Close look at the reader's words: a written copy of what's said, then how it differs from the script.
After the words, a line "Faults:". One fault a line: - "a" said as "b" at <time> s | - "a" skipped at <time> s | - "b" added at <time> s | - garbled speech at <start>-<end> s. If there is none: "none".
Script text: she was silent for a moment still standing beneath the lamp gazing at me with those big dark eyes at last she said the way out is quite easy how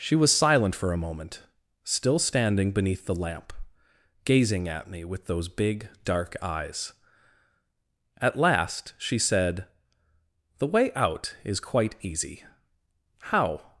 she was silent for a moment still standing beneath the lamp gazing at me with those big dark eyes at last she said the way out is quite easy how
Faults:
none